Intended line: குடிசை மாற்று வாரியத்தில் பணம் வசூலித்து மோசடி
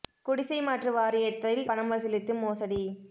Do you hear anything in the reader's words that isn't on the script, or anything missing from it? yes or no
no